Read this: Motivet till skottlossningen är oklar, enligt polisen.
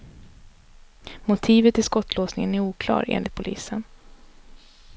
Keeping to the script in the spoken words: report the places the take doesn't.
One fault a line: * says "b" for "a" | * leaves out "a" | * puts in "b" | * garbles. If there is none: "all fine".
all fine